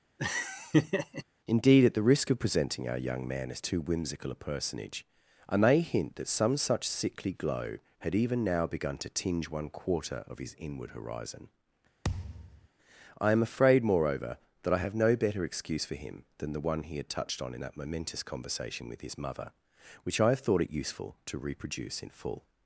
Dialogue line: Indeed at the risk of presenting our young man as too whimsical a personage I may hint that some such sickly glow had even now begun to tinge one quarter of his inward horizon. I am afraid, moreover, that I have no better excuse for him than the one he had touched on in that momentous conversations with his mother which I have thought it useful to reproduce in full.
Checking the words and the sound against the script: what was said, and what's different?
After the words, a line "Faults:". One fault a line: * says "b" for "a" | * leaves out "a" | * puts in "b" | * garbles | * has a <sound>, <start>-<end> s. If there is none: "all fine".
Indeed at the risk of presenting our young man as too whimsical a personage I may hint that some such sickly glow had even now begun to tinge one quarter of his inward horizon. I am afraid, moreover, that I have no better excuse for him than the one he had touched on in that momentous conversation with his mother which I have thought it useful to reproduce in full.
Faults:
* has a laugh, 0.2-1.2 s
* has a thud, 12.0-12.7 s
* says "conversation" for "conversations"